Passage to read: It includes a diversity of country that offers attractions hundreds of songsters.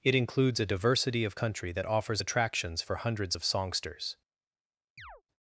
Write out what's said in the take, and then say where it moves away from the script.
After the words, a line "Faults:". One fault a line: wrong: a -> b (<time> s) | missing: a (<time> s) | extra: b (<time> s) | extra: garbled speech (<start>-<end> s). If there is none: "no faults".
It includes a diversity of country that offers attractions for hundreds of songsters.
Faults:
extra: for (2.8 s)